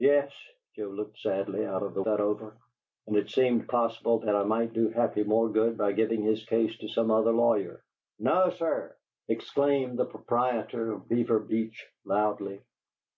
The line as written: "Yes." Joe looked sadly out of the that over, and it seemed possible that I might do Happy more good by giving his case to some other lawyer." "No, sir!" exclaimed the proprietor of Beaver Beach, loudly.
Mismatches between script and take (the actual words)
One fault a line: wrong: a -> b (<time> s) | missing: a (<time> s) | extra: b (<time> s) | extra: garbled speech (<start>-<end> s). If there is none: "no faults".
no faults